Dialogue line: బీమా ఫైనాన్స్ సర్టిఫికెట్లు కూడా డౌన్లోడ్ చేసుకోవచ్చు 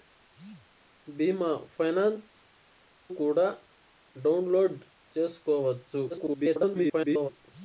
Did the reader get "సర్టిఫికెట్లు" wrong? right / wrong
wrong